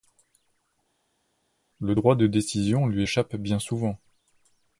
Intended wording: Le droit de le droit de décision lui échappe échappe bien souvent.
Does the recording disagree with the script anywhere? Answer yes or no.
yes